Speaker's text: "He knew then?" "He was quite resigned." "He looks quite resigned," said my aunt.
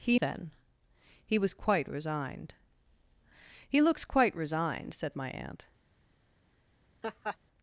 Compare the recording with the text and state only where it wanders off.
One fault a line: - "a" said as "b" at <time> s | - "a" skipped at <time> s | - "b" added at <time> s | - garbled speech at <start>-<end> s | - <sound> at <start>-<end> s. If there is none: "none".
- "knew" skipped at 0.2 s
- laugh at 7.0-7.4 s